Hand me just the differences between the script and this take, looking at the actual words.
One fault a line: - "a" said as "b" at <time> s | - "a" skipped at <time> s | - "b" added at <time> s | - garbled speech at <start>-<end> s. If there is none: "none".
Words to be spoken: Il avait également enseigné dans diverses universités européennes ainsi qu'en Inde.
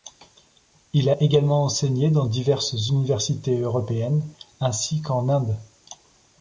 - "avait" said as "a" at 1.1 s